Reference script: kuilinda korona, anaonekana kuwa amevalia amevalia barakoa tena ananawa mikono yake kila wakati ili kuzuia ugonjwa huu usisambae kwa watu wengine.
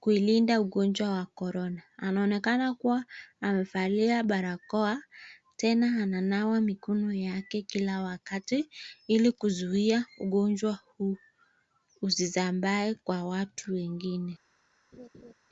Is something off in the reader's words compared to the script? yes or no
yes